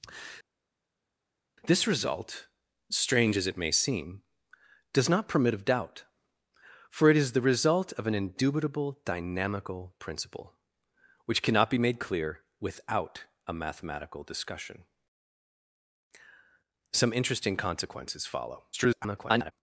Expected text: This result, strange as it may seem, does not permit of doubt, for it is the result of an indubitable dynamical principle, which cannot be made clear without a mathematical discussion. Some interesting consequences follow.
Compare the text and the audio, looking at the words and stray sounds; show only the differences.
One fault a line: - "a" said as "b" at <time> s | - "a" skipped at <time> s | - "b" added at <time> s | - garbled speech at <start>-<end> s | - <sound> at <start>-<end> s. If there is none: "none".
- garbled speech at 18.7-19.5 s